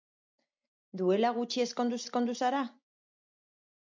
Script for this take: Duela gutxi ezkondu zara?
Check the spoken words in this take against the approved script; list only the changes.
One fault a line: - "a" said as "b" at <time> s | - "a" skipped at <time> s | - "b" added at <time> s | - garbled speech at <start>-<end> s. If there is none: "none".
- "ezkondu" added at 2.0 s